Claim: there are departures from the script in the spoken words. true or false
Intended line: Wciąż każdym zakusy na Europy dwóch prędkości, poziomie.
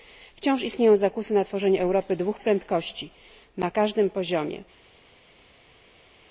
true